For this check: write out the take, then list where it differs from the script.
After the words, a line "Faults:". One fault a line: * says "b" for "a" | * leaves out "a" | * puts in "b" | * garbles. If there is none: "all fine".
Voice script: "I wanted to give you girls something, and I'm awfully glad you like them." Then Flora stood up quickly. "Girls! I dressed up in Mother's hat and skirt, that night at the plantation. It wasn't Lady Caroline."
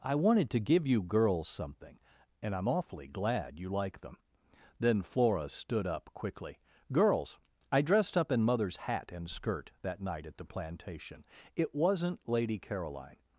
"I wanted to give you girls something, and I'm awfully glad you like them." Then Flora stood up quickly. "Girls! I dressed up in Mother's hat and skirt, that night at the plantation. It wasn't Lady Caroline."
Faults:
all fine